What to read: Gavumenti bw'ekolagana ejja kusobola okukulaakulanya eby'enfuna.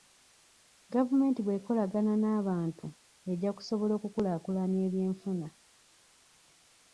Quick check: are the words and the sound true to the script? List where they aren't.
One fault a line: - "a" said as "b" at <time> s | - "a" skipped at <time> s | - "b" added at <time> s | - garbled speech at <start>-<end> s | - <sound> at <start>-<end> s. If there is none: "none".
- "n'abantu" added at 2.2 s